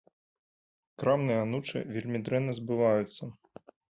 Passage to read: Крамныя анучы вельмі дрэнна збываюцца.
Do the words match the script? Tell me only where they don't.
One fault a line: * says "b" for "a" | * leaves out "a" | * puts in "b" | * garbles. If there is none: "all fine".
all fine